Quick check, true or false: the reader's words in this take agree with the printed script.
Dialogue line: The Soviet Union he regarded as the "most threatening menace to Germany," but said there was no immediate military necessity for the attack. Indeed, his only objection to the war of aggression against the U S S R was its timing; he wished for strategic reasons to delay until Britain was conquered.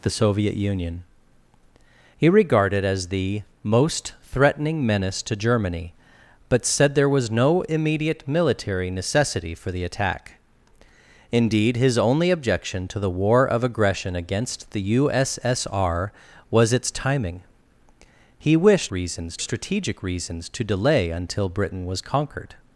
false